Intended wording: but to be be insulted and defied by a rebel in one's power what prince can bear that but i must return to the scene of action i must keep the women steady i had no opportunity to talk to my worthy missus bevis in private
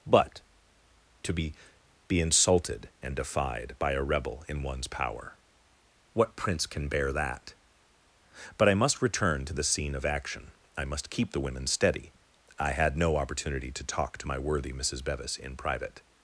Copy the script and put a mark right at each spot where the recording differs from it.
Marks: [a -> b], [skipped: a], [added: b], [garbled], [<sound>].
but to be be insulted and defied by a rebel in one's power what prince can bear that but i must return to the scene of action i must keep the women steady i had no opportunity to talk to my worthy missus bevis in private